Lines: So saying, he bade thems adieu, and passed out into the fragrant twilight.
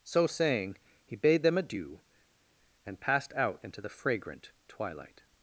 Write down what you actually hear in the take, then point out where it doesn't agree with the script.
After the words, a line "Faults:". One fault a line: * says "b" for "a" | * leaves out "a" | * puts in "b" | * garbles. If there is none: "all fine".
So saying, he bade them adieu, and passed out into the fragrant twilight.
Faults:
* says "them" for "thems"